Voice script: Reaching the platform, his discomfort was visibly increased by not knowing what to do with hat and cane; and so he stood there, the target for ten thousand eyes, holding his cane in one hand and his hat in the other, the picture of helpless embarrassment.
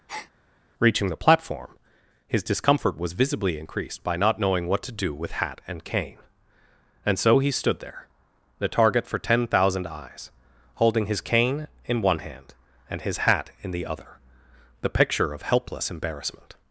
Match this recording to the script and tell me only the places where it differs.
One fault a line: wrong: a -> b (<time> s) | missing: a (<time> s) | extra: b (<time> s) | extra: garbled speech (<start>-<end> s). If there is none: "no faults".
no faults